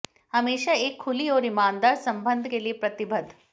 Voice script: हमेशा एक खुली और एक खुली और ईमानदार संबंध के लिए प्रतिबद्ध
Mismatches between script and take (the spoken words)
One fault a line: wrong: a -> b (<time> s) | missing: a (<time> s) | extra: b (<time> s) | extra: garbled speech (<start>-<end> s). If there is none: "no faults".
missing: एक खुली और (1.4 s)